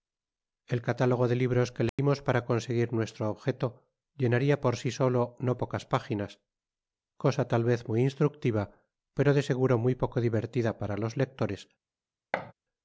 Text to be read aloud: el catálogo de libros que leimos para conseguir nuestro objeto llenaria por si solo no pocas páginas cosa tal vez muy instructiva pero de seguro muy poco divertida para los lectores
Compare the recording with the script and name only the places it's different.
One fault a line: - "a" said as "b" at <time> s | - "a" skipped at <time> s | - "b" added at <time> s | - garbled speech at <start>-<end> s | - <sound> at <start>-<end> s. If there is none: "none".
- dropout at 1.9-2.0 s
- thud at 12.3-12.5 s